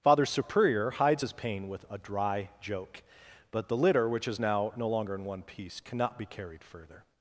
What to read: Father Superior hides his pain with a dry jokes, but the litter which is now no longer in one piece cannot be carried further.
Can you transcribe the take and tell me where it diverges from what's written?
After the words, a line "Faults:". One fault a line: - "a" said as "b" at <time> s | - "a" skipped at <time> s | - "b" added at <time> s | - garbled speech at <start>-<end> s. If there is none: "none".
Father Superior hides his pain with a dry joke, but the litter which is now no longer in one piece cannot be carried further.
Faults:
- "jokes" said as "joke" at 2.6 s